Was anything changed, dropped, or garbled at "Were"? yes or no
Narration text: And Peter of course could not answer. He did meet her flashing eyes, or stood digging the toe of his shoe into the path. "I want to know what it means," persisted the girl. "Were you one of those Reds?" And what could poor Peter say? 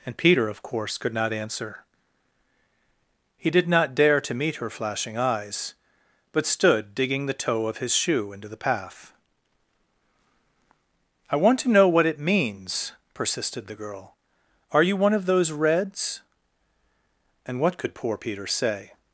yes